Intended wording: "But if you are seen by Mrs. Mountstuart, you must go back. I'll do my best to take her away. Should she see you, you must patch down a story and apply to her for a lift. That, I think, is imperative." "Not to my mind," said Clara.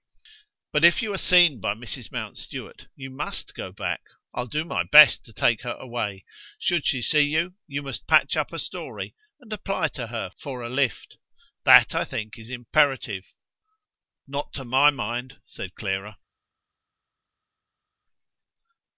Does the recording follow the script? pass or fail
fail